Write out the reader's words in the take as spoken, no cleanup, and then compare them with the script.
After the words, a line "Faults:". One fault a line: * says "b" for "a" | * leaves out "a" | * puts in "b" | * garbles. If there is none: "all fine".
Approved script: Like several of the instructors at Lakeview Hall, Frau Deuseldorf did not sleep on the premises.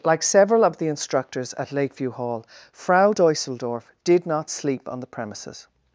Like several of the instructors at Lakeview Hall, Frau Deuseldorf did not sleep on the premises.
Faults:
all fine